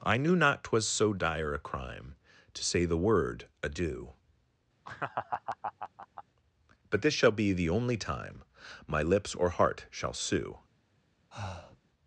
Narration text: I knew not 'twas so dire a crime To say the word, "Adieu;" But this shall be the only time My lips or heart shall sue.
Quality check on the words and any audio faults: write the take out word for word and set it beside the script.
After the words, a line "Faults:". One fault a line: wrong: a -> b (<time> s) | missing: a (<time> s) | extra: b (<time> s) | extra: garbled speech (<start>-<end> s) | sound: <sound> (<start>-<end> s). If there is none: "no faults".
I knew not 'twas so dire a crime To say the word, "Adieu;" But this shall be the only time My lips or heart shall sue.
Faults:
sound: laugh (4.8-6.2 s)
sound: breath (11.3-11.8 s)